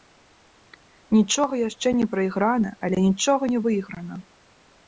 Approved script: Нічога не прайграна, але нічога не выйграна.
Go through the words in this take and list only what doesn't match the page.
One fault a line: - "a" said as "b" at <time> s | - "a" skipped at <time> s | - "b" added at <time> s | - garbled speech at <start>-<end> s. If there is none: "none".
- "яшчэ" added at 1.7 s